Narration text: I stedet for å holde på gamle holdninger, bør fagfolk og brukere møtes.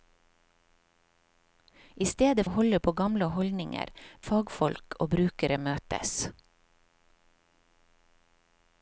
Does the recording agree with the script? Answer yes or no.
no